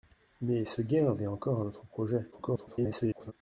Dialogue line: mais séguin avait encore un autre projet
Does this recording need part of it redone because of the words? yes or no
yes